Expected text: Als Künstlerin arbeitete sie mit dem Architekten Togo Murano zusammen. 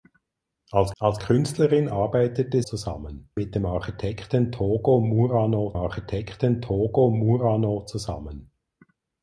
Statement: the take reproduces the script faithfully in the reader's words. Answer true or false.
false